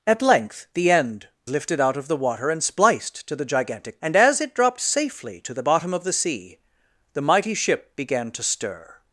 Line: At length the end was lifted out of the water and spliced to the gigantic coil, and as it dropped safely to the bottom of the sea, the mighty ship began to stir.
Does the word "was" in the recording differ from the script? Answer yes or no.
yes